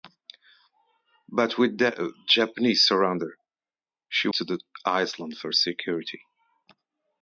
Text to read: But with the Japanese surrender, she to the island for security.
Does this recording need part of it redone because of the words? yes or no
no